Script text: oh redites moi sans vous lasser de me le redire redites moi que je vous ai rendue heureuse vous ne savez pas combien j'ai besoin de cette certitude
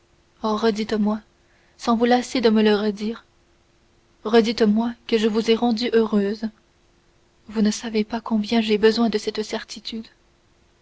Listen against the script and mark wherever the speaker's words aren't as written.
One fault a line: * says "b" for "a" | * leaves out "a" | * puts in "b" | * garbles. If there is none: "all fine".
all fine